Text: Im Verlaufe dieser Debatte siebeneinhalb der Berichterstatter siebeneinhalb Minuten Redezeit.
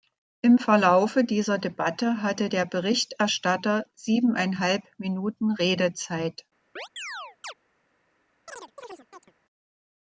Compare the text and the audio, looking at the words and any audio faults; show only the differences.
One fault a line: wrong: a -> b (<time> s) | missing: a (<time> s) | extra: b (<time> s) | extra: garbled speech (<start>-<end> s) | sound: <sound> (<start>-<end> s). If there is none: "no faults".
wrong: siebeneinhalb -> hatte (2.2 s)
sound: chirp (6.8-7.5 s)
sound: chirp (8.5-9.3 s)